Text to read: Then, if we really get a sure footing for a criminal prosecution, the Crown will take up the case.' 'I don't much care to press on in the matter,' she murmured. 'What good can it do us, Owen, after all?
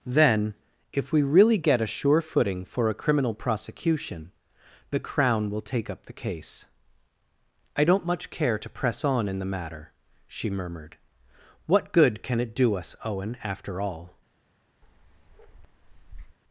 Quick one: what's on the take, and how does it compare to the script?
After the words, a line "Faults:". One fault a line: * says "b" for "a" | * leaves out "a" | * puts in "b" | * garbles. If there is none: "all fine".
Then, if we really get a sure footing for a criminal prosecution, the Crown will take up the case.' 'I don't much care to press on in the matter,' she murmured. 'What good can it do us, Owen, after all?
Faults:
all fine